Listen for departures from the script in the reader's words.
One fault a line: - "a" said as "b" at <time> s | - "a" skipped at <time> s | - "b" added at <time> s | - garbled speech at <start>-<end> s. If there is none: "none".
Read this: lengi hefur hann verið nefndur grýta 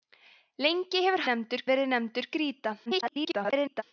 - "hann" said as "nefndur" at 1.3 s
- garbled speech at 2.9-3.8 s